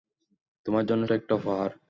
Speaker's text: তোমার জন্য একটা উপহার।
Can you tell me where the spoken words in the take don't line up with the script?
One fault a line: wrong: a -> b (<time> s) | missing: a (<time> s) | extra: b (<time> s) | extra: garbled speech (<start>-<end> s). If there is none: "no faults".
no faults